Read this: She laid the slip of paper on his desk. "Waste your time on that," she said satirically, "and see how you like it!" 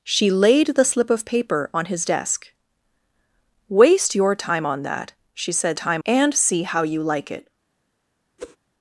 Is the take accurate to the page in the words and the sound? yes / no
no